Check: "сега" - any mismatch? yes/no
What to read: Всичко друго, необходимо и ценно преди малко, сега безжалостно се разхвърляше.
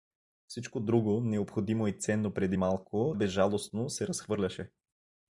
yes